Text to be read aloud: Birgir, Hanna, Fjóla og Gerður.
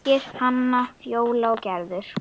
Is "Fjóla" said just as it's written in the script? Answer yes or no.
yes